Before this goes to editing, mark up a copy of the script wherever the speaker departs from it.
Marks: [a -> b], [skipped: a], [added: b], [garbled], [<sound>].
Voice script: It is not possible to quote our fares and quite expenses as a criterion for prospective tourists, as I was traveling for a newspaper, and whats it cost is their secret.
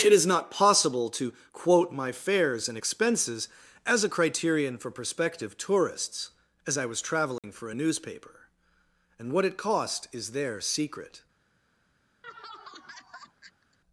It is not possible to quote [our -> my] fares and [skipped: quite] expenses as a criterion for prospective tourists, as I was traveling [dropout] for a newspaper, and [whats -> what] it cost is their secret. [laugh]